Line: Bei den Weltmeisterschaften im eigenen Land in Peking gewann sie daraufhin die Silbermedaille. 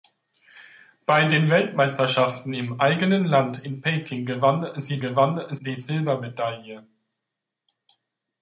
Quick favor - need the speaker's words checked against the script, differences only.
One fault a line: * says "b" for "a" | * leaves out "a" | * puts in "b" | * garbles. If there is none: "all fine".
* says "gewann" for "daraufhin"